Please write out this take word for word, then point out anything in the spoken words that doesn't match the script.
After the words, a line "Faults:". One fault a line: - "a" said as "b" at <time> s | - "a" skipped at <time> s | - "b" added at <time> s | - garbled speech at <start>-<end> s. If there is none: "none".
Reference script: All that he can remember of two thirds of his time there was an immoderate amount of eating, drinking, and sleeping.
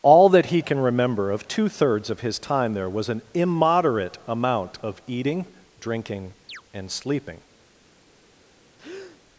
All that he can remember of two thirds of his time there was an immoderate amount of eating, drinking, and sleeping.
Faults:
none